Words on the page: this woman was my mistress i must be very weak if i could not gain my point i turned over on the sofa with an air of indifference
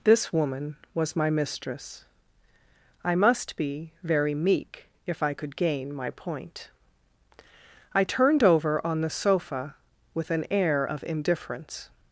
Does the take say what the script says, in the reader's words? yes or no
no